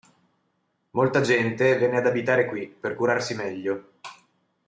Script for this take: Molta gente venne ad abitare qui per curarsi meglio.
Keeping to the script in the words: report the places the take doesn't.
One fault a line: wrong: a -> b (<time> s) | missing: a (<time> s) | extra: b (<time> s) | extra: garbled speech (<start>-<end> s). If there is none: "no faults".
no faults